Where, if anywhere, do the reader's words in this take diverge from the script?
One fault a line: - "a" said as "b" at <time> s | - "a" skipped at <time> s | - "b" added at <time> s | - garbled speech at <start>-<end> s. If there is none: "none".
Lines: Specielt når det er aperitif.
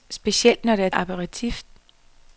none